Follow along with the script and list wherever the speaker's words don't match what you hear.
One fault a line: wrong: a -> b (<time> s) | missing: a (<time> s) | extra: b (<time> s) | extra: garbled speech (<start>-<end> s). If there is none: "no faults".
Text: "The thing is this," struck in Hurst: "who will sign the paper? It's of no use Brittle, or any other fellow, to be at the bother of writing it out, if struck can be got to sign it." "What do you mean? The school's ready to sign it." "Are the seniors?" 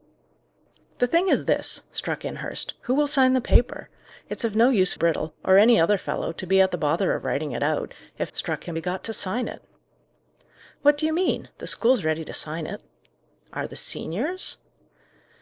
no faults